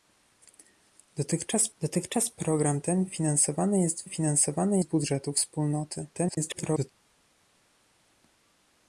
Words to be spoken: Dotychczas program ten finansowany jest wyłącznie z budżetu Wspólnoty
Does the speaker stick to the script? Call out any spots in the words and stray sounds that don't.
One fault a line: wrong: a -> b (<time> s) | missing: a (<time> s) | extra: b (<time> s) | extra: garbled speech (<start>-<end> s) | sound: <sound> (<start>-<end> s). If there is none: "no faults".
extra: dotychczas (1.8 s)
wrong: wyłącznie -> finansowany (4.0 s)
extra: garbled speech (6.1-6.9 s)